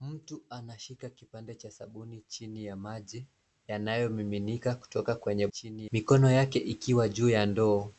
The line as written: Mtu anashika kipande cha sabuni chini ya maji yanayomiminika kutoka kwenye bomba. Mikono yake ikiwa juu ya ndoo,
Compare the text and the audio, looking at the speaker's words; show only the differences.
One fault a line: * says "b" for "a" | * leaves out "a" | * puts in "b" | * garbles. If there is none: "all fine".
* says "chini" for "bomba"